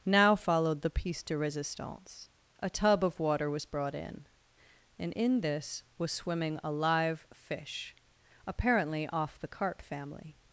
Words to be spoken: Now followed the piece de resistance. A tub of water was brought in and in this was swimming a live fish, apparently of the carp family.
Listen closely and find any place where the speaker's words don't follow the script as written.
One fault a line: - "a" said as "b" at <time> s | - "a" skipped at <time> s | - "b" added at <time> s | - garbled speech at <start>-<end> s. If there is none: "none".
- "of" said as "off" at 9.1 s